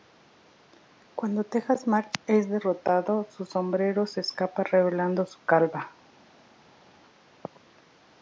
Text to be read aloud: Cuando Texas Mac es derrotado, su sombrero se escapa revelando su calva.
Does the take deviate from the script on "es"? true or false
false